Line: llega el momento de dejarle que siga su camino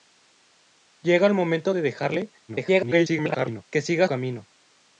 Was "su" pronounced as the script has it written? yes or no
no